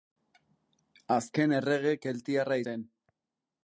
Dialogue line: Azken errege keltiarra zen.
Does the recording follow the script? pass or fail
pass